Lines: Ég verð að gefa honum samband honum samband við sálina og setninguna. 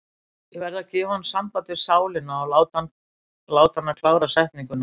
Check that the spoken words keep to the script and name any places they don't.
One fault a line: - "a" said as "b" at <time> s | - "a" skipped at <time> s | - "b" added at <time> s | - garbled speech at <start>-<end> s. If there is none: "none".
- "honum samband" skipped at 1.7 s
- "láta hana klára" added at 3.6 s